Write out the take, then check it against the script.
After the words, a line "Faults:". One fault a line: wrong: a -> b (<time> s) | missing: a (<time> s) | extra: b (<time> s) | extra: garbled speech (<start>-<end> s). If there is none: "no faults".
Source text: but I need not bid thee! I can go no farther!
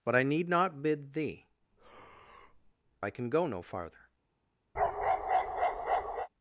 but I need not bid thee! I can go no farther!
Faults:
no faults